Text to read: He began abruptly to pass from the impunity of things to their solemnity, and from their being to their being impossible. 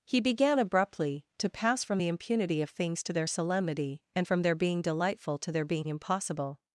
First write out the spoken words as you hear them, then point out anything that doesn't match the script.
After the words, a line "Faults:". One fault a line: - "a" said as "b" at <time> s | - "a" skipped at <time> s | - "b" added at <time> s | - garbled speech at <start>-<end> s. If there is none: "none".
He began abruptly to pass from the impunity of things to their solemnity, and from their being delightful to their being impossible.
Faults:
- "delightful" added at 4.8 s